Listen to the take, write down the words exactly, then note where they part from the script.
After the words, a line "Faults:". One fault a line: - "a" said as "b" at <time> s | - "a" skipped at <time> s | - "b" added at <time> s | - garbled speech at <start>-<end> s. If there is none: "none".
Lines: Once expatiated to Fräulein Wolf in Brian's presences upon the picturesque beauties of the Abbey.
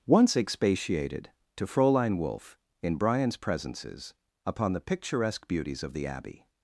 Once expatiated to Fräulein Wolf in Brian's presences upon the picturesque beauties of the Abbey.
Faults:
none